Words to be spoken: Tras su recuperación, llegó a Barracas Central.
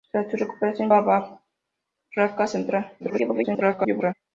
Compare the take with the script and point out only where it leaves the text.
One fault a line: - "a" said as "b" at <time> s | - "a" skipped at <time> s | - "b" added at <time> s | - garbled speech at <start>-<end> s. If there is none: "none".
- "llegó" skipped at 0.9 s
- garbled speech at 3.0-4.1 s